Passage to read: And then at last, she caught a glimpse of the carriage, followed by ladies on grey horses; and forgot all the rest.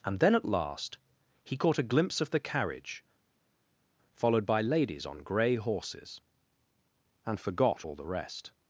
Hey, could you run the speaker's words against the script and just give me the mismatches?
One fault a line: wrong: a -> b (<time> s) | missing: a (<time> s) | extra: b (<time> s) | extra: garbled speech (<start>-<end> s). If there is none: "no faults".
wrong: she -> he (1.4 s)